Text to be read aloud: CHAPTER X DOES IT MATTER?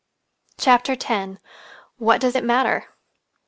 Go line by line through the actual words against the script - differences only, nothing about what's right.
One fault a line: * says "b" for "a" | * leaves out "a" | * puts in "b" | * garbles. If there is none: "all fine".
* puts in "WHAT"